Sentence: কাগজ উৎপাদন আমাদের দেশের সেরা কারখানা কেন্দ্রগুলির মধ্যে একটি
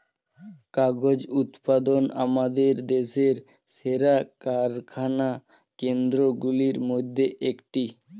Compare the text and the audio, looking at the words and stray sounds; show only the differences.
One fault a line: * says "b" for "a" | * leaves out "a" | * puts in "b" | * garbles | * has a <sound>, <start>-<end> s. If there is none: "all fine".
all fine